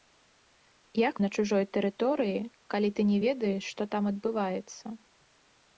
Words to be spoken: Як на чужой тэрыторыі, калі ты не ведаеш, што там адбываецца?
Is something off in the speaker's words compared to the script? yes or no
no